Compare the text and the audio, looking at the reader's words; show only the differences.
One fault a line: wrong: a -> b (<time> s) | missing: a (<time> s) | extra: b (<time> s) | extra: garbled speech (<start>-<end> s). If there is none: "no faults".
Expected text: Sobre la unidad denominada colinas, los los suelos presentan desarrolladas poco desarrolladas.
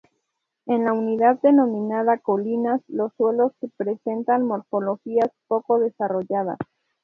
wrong: Sobre -> En (0.7 s)
missing: los (3.1 s)
wrong: desarrolladas -> morfologías (4.5 s)